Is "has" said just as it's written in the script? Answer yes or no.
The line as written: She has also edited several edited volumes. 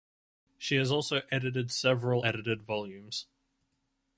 yes